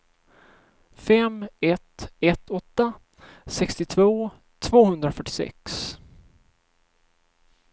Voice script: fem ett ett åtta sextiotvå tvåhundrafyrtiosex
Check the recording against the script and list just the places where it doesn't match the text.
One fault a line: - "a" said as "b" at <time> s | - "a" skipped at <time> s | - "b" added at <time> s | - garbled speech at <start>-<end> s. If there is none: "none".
none